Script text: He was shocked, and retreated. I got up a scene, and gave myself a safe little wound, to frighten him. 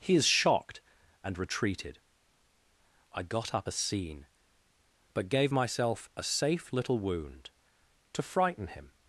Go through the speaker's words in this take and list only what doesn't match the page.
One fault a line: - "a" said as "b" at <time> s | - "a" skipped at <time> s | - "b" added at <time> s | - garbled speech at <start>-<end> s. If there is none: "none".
- "was" said as "is" at 0.1 s
- "and" said as "but" at 5.1 s